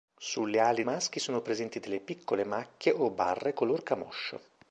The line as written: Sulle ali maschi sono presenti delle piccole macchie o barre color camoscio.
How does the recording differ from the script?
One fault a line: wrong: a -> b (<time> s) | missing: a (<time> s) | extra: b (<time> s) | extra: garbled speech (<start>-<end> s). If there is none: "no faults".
no faults